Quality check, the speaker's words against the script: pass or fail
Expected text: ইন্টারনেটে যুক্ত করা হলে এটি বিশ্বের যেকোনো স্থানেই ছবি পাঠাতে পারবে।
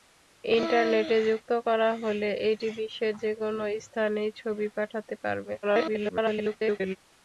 fail